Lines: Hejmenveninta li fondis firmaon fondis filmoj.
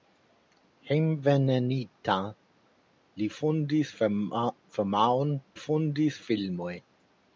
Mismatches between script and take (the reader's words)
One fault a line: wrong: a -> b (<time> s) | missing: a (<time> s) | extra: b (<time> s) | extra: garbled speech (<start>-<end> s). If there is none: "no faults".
no faults